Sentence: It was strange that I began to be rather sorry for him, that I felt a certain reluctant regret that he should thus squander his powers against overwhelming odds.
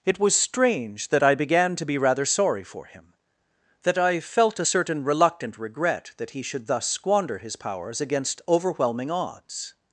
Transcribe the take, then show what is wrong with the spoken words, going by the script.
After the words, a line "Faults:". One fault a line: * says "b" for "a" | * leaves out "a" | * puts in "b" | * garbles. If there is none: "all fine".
It was strange that I began to be rather sorry for him, that I felt a certain reluctant regret that he should thus squander his powers against overwhelming odds.
Faults:
all fine